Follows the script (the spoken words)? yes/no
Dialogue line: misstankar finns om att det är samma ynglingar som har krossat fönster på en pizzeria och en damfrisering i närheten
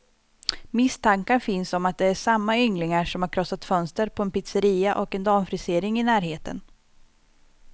yes